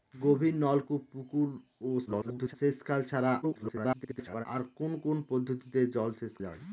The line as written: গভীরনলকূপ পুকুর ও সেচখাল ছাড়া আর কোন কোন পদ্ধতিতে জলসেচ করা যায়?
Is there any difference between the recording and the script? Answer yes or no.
yes